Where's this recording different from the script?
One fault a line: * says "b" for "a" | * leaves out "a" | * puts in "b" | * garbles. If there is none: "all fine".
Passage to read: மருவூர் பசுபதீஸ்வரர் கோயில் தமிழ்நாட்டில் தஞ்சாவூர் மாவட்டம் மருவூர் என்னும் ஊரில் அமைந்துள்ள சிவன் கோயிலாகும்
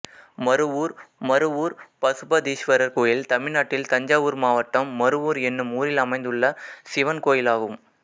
* puts in "மருவூர்"